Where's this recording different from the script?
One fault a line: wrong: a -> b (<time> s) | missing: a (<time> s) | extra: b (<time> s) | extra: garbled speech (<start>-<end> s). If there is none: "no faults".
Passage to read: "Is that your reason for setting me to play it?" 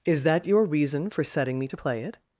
no faults